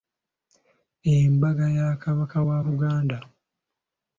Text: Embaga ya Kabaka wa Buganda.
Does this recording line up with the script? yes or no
yes